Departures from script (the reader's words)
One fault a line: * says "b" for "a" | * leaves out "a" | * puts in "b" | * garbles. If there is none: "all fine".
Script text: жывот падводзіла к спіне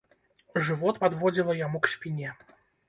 * puts in "яму"